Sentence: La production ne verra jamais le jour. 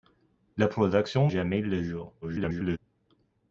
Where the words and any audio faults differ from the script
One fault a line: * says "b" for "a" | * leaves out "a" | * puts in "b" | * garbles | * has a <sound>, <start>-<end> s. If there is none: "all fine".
* leaves out "ne verra"
* garbles